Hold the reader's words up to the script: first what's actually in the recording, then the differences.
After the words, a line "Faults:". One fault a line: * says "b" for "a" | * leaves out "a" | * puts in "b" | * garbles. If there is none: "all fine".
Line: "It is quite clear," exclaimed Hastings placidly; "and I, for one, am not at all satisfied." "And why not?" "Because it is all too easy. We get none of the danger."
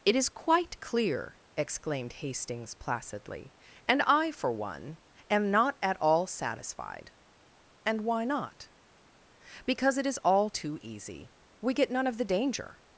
"It is quite clear," exclaimed Hastings placidly; "and I, for one, am not at all satisfied." "And why not?" "Because it is all too easy. We get none of the danger."
Faults:
all fine